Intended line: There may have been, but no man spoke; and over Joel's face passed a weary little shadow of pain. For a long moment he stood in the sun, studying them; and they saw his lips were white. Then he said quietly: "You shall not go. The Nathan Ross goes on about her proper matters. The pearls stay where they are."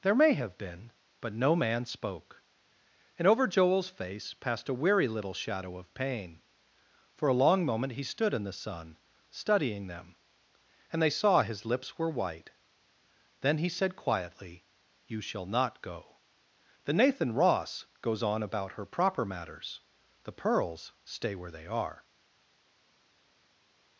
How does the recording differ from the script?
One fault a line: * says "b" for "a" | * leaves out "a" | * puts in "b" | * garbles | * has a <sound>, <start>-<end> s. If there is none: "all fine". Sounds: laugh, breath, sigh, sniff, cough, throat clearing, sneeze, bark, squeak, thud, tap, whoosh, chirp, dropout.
all fine